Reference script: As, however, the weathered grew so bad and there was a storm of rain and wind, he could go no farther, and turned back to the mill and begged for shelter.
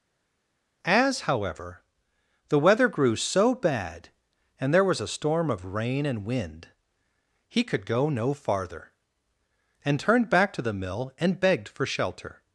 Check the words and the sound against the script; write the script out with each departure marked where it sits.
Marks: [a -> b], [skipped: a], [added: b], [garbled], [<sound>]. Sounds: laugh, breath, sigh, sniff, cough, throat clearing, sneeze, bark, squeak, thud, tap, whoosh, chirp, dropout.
As, however, the [weathered -> weather] grew so bad and there was a storm of rain and wind, he could go no farther, and turned back to the mill and begged for shelter.